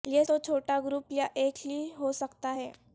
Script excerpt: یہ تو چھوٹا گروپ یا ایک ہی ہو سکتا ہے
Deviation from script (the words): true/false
false